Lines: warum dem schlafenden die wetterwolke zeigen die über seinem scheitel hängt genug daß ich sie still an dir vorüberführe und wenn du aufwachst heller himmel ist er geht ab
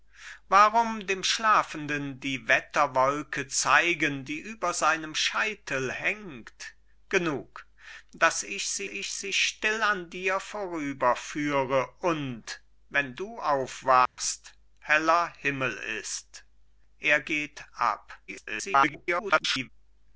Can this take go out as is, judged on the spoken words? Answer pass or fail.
fail